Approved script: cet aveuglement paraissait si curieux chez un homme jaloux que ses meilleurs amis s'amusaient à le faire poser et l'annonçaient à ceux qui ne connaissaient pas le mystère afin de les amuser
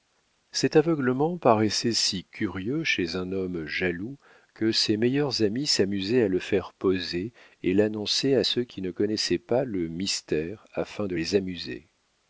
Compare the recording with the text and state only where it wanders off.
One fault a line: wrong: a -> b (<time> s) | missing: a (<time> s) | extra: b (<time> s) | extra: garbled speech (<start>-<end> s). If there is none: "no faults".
no faults